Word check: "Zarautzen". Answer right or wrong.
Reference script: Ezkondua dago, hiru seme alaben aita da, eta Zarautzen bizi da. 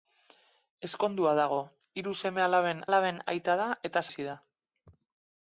wrong